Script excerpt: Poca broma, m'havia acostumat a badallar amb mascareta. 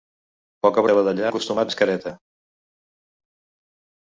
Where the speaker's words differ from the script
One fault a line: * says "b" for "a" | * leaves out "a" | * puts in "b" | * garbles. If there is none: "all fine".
* leaves out "broma m'havia acostumat"
* says "acostumat" for "amb"